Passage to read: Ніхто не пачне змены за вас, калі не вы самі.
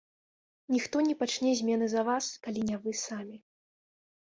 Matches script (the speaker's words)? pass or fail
pass